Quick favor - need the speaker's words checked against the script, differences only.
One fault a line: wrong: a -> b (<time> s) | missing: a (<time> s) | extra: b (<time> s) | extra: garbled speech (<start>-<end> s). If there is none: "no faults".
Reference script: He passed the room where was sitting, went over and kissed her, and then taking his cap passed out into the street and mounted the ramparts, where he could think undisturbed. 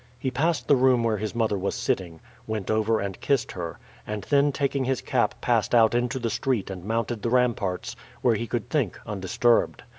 extra: his mother (1.2 s)